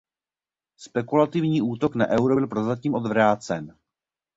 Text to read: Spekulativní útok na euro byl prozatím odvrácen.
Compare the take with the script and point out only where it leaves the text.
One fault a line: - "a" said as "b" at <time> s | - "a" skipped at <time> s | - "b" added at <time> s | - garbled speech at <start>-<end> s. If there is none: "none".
none